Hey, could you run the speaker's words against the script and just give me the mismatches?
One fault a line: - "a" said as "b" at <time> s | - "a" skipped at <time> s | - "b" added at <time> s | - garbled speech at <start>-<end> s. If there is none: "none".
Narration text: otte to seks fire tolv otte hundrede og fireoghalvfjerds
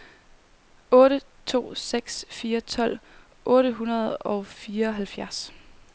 none